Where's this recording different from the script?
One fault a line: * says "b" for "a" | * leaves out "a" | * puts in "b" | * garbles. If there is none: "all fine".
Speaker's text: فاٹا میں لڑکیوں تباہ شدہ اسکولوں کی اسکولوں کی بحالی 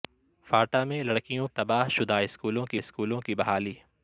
all fine